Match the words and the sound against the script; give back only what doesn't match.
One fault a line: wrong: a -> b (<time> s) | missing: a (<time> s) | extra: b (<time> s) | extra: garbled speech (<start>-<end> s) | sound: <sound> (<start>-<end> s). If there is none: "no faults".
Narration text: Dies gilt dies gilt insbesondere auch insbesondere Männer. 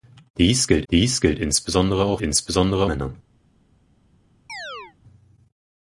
sound: chirp (4.5-5.0 s)